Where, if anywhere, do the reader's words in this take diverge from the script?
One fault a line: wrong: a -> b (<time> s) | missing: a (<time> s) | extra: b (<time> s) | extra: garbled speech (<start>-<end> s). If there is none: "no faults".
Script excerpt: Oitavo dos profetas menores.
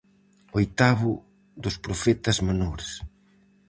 no faults